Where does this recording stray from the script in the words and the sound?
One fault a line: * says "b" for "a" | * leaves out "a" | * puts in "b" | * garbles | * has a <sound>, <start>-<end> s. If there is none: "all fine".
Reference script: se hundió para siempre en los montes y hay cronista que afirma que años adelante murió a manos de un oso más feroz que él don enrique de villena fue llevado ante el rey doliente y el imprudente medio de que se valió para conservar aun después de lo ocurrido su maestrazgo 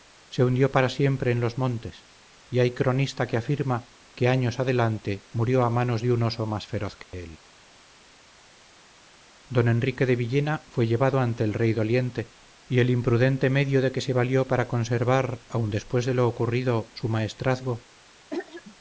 * has a dropout, 7.0-7.1 s
* has a throat clearing, 18.3-18.8 s